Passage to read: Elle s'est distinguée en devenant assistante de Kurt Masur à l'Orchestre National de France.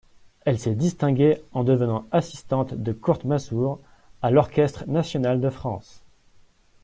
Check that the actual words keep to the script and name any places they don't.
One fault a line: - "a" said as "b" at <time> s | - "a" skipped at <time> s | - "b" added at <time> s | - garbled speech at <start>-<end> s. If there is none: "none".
none